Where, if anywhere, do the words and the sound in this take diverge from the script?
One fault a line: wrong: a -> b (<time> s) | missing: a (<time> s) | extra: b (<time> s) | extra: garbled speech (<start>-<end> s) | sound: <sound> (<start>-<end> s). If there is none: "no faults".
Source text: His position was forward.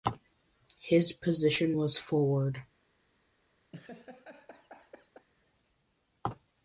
sound: laugh (3.7-5.3 s)